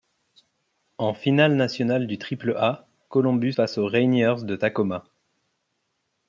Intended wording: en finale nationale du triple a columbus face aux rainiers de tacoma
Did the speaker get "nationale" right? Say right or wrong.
right